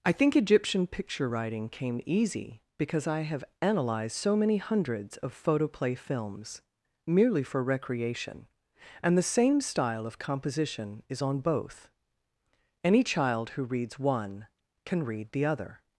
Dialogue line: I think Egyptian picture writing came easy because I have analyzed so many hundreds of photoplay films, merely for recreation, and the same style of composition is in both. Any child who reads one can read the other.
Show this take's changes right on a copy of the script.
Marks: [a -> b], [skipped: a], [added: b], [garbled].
I think Egyptian picture writing came easy because I have analyzed so many hundreds of photoplay films, merely for recreation, and the same style of composition is [in -> on] both. Any child who reads one can read the other.